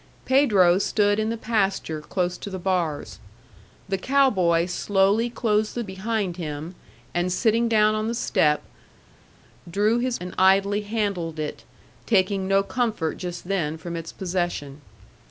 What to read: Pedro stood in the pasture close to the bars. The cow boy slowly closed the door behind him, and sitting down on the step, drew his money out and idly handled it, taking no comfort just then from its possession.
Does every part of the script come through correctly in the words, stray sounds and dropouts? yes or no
no